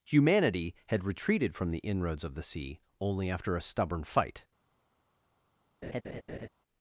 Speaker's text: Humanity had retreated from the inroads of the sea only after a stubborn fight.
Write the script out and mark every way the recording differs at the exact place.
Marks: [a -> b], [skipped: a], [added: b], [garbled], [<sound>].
Humanity had retreated from the inroads of the sea only after a stubborn fight. [laugh]